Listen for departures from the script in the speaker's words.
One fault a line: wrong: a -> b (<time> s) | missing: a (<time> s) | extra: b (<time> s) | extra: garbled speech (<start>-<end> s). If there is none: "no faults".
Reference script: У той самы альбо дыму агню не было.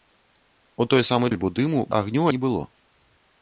no faults